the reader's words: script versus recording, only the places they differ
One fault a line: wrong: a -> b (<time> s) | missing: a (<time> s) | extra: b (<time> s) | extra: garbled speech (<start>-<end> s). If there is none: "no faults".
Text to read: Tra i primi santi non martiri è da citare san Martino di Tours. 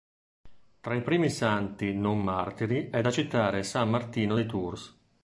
no faults